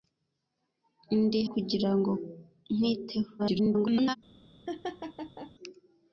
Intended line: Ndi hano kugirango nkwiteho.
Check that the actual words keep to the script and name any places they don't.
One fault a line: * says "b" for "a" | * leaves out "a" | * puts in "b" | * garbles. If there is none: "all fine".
* leaves out "hano"
* garbles